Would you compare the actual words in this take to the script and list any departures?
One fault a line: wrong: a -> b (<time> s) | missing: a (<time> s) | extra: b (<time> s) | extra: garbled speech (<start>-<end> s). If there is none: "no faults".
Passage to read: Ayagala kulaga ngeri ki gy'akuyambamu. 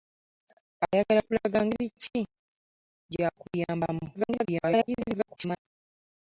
extra: garbled speech (4.1-5.6 s)